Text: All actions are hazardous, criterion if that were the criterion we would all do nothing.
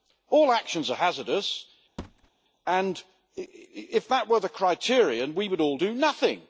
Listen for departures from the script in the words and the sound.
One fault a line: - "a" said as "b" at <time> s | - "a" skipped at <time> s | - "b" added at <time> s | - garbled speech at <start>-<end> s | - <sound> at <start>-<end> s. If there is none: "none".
- thud at 2.0-2.3 s
- "criterion" said as "and" at 2.7 s